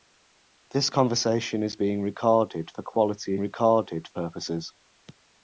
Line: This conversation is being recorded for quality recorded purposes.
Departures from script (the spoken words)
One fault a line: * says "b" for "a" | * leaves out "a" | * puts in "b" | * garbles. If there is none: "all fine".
all fine